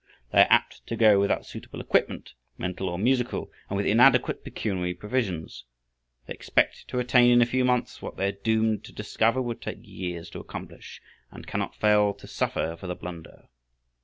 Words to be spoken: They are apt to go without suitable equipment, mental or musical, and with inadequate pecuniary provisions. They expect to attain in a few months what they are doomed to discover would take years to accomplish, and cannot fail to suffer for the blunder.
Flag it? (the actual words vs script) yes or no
no